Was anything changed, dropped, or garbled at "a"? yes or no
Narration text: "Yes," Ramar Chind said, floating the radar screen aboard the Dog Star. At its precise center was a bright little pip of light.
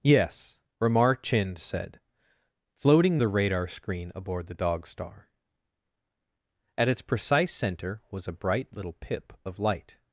no